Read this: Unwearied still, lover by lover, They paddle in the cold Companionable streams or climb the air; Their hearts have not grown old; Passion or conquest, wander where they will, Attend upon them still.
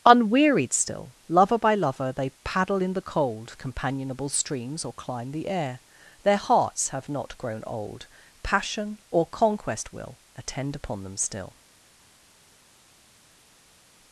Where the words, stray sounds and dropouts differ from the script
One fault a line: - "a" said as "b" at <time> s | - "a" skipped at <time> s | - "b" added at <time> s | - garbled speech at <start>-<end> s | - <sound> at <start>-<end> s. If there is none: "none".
- "wander where they" skipped at 9.9 s